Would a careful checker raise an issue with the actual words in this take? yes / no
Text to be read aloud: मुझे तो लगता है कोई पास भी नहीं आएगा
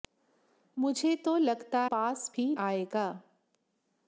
yes